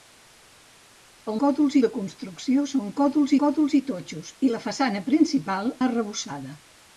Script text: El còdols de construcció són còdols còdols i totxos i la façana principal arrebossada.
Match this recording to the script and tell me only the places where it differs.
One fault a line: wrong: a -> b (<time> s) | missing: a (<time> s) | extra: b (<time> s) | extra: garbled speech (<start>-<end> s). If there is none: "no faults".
no faults